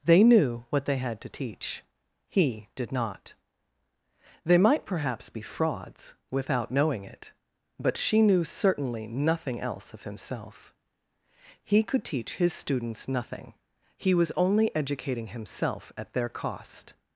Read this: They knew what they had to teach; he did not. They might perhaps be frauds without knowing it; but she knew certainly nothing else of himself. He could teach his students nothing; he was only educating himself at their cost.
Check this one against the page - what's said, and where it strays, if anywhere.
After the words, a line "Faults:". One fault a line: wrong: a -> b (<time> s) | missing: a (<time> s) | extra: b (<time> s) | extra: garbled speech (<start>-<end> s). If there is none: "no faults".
They knew what they had to teach; he did not. They might perhaps be frauds without knowing it; but she knew certainly nothing else of himself. He could teach his students nothing; he was only educating himself at their cost.
Faults:
no faults